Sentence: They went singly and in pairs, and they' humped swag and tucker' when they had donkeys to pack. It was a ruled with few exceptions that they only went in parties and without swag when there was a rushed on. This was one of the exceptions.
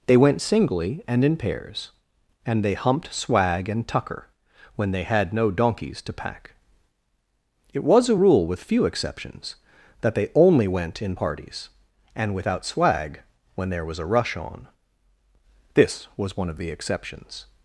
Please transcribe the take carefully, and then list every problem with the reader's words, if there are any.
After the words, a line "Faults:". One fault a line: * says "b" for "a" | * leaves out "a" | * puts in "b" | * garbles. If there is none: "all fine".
They went singly and in pairs, and they' humped swag and tucker' when they had no donkeys to pack. It was a rule with few exceptions that they only went in parties and without swag when there was a rush on. This was one of the exceptions.
Faults:
* puts in "no"
* says "rule" for "ruled"
* says "rush" for "rushed"